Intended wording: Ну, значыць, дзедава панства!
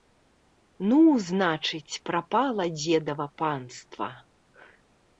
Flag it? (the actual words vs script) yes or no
yes